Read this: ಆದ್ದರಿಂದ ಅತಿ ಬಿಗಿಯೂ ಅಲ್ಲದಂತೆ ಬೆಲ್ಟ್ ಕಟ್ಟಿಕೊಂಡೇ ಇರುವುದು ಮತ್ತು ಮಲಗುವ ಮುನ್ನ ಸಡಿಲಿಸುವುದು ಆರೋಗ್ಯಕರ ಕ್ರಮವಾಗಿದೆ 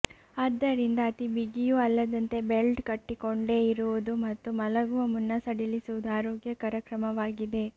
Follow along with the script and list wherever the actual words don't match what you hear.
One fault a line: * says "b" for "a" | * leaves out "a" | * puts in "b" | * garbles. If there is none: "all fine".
all fine